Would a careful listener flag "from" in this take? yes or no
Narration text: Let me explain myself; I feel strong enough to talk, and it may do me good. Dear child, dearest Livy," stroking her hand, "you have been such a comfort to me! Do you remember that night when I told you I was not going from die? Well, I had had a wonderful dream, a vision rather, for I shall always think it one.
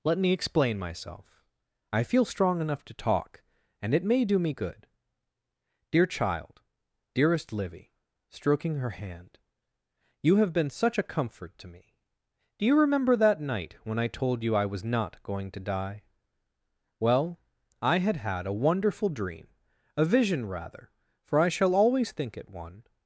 yes